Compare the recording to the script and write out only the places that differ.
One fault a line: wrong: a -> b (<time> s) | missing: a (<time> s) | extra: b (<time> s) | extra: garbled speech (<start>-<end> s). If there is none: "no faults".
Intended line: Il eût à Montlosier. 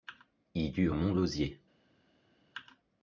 no faults